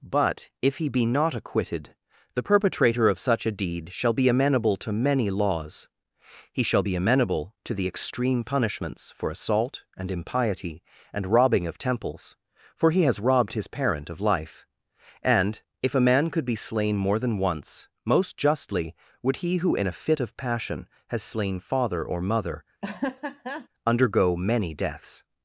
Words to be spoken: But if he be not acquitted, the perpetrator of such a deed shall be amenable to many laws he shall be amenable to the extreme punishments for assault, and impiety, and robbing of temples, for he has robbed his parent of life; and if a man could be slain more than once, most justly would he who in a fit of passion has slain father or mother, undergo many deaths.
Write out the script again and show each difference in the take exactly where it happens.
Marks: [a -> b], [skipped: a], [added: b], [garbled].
But if he be not acquitted, the perpetrator of such a deed shall be amenable to many laws he shall be amenable to the extreme punishments for assault, and impiety, and robbing of temples, for he has robbed his parent of life; and if a man could be slain more than once, most justly would he who in a fit of passion has slain father or mother, undergo many deaths.